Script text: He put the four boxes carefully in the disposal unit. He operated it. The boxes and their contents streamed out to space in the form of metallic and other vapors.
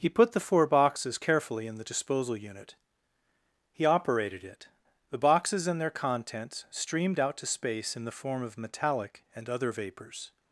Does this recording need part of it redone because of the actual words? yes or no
no